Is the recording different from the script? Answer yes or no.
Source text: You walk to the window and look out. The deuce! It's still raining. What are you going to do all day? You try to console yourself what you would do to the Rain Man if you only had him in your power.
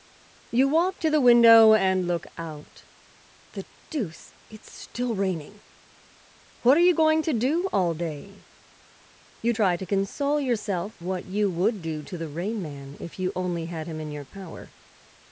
no